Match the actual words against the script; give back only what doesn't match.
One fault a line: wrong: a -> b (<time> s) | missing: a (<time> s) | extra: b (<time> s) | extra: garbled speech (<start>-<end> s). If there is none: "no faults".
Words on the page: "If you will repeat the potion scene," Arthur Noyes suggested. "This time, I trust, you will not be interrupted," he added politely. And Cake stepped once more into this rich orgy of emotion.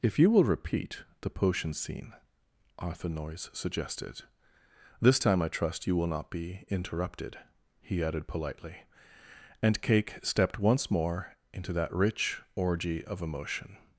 wrong: this -> that (11.7 s)